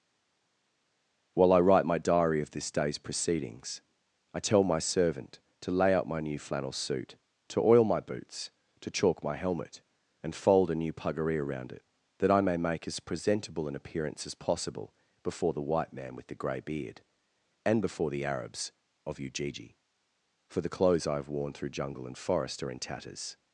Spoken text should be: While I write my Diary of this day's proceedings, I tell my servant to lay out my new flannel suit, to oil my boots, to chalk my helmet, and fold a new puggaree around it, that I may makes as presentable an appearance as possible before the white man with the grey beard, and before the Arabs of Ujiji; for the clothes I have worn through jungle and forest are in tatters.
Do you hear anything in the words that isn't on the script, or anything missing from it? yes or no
yes